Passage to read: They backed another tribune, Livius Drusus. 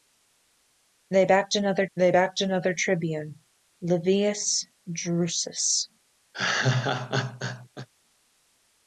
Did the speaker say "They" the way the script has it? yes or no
yes